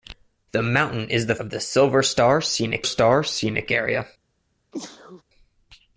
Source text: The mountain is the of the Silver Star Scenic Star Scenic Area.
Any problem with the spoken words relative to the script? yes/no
no